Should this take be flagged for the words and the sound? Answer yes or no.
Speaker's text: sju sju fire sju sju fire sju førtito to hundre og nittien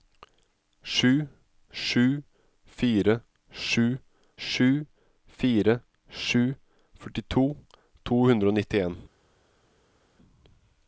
no